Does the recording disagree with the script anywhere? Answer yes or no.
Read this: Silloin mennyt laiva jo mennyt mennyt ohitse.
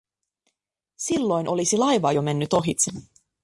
yes